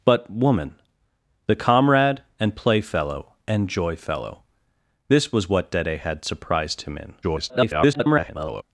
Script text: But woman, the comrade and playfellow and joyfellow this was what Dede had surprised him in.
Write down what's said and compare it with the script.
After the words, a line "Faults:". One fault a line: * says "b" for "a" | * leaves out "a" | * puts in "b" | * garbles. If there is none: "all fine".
But woman, the comrade and playfellow and joyfellow this was what Dede had surprised him in. [garbled]
Faults:
* garbles